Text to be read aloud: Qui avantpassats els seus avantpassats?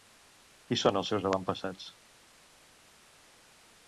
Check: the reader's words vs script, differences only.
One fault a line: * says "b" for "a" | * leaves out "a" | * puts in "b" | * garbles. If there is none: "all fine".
* says "són" for "avantpassats"